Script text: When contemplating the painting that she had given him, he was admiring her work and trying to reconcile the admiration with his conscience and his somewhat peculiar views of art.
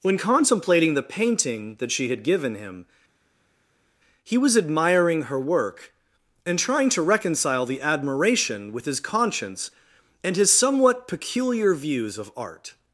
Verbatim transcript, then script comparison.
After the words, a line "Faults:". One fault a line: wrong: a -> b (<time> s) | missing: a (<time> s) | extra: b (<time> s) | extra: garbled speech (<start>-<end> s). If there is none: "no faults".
When contemplating the painting that she had given him, he was admiring her work and trying to reconcile the admiration with his conscience and his somewhat peculiar views of art.
Faults:
no faults